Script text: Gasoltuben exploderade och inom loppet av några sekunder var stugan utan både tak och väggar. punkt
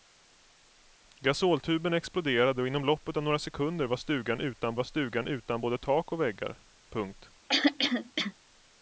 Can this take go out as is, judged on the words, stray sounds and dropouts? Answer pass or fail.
fail